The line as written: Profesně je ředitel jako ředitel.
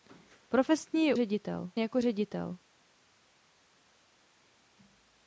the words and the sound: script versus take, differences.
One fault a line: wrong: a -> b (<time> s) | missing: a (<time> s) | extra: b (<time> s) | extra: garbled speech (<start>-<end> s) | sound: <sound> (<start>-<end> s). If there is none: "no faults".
no faults